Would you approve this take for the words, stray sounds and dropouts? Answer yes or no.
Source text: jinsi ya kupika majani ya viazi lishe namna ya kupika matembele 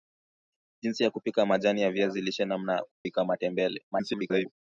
no